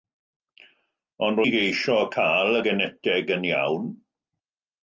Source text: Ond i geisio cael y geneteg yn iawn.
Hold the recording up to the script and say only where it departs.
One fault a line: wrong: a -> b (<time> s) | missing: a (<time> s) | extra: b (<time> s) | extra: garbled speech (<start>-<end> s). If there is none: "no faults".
no faults